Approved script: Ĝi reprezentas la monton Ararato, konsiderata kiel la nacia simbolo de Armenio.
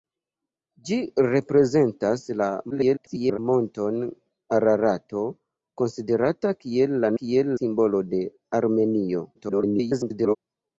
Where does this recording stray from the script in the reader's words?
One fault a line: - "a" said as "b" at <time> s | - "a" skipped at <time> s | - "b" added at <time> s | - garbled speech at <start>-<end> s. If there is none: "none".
- garbled speech at 2.7-3.4 s
- "nacia" said as "kiel" at 7.2 s
- garbled speech at 9.3-10.4 s